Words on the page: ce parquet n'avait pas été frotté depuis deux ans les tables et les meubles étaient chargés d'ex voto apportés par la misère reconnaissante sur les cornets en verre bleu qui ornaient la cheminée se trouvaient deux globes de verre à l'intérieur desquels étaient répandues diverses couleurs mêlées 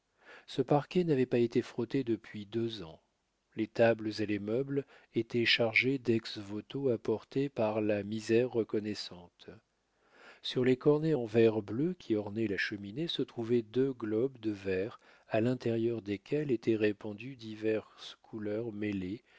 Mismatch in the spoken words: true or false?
false